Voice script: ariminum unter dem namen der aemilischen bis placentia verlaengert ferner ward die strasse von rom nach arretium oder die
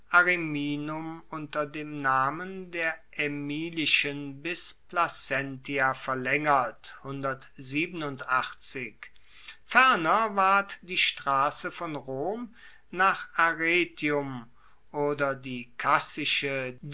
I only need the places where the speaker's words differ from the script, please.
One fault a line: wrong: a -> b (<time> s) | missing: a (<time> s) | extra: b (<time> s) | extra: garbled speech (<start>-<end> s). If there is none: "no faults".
no faults